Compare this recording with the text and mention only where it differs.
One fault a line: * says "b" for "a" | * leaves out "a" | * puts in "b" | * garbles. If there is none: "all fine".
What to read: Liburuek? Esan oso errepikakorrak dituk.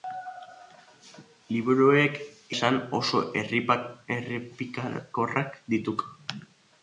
all fine